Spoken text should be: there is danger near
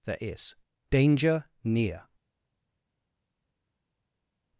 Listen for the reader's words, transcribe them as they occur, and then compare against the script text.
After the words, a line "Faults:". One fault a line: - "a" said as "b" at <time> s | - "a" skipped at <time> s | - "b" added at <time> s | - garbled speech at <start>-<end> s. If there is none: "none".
there is danger near
Faults:
none